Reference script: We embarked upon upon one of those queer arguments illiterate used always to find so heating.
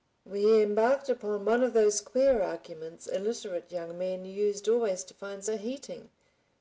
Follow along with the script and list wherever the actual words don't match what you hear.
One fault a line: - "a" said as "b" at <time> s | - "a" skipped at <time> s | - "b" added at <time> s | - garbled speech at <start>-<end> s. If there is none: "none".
- "upon" skipped at 1.4 s
- "young men" added at 3.7 s